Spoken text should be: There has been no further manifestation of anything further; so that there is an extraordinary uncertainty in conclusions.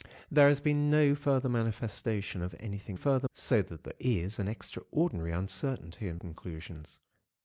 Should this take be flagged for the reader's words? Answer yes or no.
no